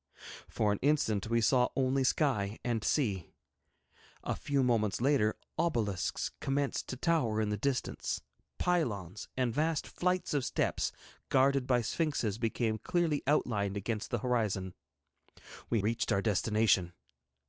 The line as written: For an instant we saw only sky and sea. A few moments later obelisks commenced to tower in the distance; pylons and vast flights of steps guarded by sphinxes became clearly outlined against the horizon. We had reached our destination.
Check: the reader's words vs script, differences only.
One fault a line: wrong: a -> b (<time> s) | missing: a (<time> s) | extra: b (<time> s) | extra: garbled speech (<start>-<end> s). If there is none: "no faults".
missing: had (15.8 s)